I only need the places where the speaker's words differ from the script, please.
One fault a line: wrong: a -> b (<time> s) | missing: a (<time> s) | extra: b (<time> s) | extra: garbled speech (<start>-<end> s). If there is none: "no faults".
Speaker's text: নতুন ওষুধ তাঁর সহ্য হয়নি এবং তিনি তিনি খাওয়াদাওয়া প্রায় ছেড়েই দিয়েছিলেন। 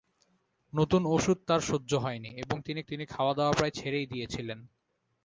no faults